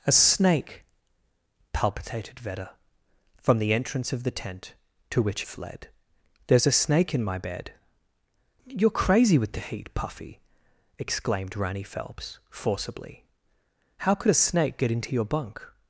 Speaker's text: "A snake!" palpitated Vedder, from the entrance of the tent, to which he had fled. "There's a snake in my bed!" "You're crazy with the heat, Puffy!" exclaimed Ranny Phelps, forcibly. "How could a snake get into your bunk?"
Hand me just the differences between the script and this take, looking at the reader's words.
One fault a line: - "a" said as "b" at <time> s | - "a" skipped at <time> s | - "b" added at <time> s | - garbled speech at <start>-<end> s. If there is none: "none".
- "he had" skipped at 5.4 s